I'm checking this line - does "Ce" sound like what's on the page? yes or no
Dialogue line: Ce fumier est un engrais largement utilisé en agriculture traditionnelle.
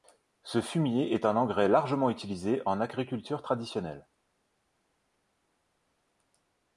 yes